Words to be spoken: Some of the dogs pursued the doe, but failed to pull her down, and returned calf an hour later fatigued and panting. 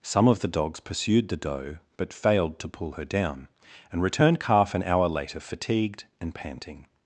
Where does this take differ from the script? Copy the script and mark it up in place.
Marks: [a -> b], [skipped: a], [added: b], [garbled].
Some of the dogs pursued the doe, but failed to pull her down, and returned calf an hour later fatigued and panting.